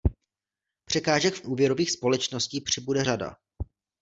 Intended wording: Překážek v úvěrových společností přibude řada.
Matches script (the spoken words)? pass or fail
pass